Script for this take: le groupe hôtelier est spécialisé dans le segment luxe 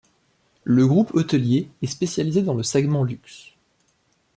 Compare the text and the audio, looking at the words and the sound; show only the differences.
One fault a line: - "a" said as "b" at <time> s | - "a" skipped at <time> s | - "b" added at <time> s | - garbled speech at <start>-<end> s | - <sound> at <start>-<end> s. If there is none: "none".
none